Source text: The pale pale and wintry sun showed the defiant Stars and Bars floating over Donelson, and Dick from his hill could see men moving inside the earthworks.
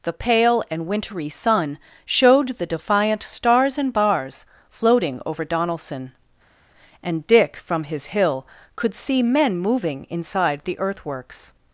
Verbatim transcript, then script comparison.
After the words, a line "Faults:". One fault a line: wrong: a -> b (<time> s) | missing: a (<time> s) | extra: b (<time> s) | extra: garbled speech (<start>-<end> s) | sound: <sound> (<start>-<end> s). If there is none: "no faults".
The pale and wintry sun showed the defiant Stars and Bars floating over Donelson, and Dick from his hill could see men moving inside the earthworks.
Faults:
missing: pale (0.6 s)